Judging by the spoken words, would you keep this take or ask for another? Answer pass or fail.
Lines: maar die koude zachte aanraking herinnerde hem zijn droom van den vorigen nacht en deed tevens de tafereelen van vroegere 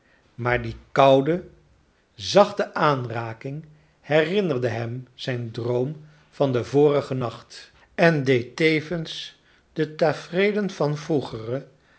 pass